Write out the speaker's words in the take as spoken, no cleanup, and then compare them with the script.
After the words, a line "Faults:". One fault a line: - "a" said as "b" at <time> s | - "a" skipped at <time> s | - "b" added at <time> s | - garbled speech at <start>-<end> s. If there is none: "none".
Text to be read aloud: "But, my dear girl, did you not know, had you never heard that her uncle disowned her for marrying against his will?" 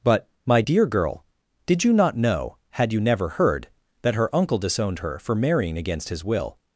"But, my dear girl, did you not know, had you never heard that her uncle disowned her for marrying against his will?"
Faults:
none